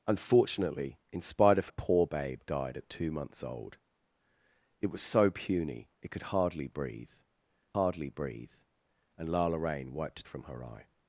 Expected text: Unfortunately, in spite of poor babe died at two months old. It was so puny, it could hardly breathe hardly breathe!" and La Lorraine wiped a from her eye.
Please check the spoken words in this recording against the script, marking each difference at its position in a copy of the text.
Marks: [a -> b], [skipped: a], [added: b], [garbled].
Unfortunately, in spite of poor babe died at two months old. It was so puny, it could hardly breathe hardly breathe!" and La Lorraine wiped a from her eye.